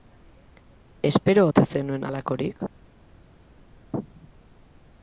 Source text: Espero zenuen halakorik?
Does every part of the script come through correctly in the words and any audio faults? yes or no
no